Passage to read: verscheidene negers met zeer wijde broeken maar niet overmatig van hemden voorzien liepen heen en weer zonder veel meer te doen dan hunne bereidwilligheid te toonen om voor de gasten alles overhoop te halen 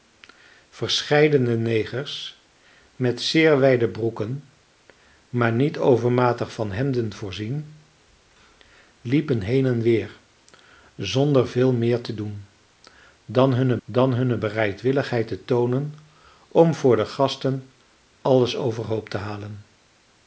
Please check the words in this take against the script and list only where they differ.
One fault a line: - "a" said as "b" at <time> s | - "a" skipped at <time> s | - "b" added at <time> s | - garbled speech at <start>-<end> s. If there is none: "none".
- "dan hunne" added at 13.8 s